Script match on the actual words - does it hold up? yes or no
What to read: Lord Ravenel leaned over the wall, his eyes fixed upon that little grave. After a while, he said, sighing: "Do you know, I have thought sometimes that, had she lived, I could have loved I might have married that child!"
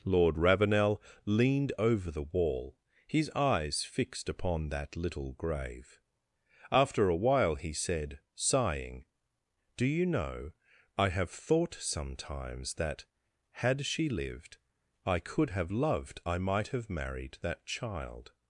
yes